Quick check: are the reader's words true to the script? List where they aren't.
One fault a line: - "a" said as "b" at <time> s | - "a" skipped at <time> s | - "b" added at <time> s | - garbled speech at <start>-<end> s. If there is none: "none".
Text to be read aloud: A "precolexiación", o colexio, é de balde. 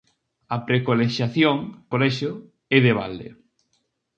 none